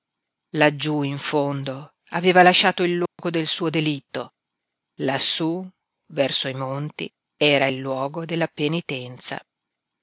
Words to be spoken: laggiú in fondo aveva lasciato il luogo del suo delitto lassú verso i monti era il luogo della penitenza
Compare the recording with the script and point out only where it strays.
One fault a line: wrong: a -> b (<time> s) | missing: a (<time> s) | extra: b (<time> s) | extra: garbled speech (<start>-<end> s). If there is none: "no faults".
no faults